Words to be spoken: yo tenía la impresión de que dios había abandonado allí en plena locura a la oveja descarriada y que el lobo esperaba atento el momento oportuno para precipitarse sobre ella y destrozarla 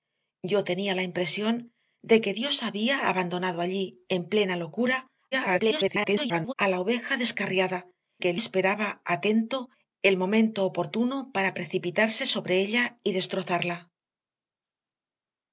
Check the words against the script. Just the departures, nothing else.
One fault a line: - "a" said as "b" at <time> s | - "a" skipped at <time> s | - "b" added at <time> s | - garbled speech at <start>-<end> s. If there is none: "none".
- garbled speech at 5.3-6.5 s
- "y" skipped at 7.8 s
- "lobo" skipped at 8.4 s